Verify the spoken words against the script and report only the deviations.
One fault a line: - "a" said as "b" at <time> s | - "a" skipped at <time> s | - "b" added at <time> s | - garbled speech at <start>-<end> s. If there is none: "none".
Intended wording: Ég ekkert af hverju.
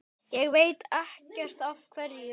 - "veit" added at 0.6 s